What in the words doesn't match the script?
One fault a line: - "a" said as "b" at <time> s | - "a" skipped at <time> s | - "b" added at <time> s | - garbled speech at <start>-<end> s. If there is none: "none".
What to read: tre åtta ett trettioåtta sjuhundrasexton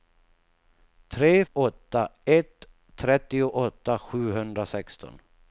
none